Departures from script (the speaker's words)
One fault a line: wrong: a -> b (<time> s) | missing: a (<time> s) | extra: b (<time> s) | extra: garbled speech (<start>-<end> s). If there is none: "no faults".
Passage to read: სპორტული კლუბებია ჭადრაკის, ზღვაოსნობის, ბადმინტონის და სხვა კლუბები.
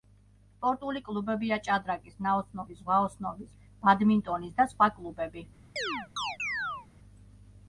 extra: ნაოსნობის (2.3 s)